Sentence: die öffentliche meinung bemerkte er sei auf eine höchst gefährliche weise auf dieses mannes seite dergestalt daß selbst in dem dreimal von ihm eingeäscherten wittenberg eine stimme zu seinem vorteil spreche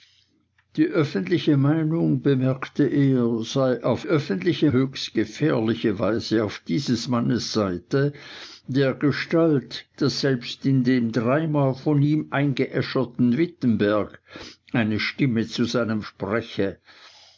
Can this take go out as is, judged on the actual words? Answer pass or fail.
fail